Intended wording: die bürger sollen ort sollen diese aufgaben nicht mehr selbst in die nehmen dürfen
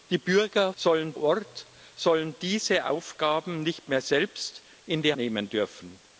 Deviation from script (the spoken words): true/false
false